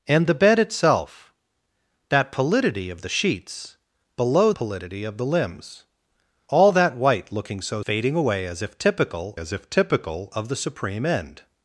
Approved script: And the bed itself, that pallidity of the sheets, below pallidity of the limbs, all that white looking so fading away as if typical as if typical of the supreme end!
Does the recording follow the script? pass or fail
pass